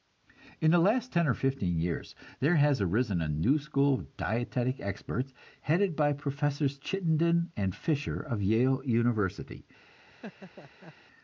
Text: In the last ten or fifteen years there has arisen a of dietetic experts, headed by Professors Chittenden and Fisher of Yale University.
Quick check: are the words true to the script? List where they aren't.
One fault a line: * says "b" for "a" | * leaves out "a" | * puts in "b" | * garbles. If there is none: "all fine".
* puts in "new school"